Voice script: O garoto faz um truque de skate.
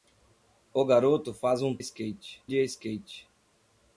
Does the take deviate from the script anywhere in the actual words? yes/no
yes